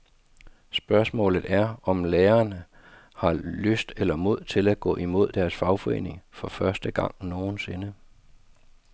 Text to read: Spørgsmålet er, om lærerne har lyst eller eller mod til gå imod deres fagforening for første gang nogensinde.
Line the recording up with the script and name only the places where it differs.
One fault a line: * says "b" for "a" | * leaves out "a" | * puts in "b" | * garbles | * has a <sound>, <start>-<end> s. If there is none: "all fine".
* leaves out "eller"
* puts in "at"